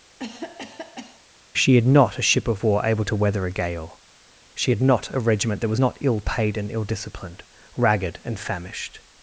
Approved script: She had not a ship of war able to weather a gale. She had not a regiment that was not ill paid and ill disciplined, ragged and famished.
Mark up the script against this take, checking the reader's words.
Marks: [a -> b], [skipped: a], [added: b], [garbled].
She had not a ship of war able to weather a gale. She had not a regiment that was not ill paid and ill disciplined, ragged and famished.